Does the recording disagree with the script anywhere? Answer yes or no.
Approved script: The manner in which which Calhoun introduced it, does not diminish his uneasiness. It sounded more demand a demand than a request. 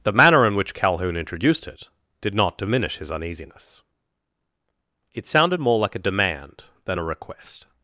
yes